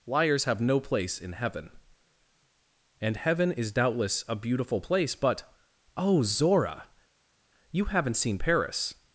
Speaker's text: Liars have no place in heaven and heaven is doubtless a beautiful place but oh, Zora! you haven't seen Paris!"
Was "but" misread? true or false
false